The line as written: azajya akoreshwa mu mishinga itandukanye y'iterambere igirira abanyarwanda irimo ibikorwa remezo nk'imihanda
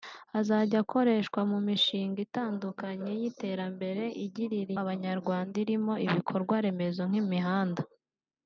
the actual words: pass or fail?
pass